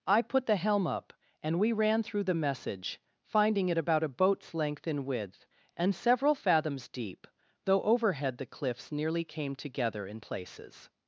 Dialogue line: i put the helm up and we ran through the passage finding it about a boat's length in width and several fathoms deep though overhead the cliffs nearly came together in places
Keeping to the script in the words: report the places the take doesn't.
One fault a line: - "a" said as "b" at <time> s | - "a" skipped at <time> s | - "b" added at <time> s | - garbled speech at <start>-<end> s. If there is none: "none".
- "passage" said as "message" at 2.3 s